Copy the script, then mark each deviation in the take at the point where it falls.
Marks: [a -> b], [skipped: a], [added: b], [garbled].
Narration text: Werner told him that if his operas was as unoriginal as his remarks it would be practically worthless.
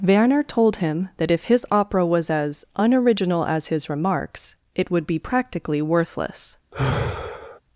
Werner told him that if his [operas -> opera] was as unoriginal as his remarks it would be practically worthless.